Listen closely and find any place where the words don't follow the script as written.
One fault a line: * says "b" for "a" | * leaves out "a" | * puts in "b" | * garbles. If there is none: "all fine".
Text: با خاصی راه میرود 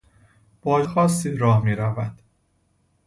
all fine